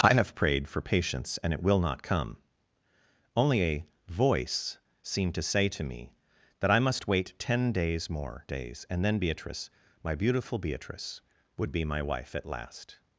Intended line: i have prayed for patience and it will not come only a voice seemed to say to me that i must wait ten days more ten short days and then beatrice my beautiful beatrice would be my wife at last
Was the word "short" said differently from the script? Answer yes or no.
yes